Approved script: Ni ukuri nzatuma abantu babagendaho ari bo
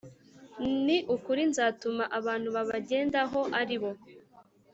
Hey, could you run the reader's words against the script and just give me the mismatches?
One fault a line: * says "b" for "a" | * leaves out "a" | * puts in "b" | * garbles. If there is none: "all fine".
all fine